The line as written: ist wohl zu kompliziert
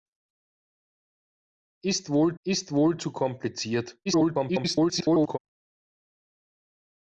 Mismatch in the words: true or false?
true